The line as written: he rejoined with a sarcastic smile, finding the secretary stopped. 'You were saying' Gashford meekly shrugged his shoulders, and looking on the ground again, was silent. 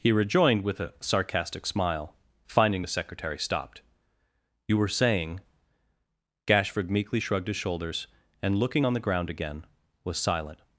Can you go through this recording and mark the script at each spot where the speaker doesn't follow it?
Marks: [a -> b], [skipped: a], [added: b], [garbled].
he rejoined with a sarcastic smile, finding the secretary stopped. 'You were saying' Gashford meekly shrugged his shoulders, and looking on the ground again, was silent.